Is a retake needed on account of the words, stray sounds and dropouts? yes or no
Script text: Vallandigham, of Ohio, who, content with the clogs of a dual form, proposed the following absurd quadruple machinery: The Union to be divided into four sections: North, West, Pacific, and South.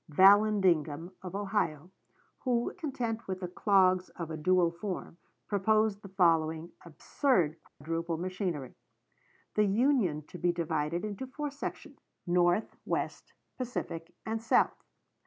yes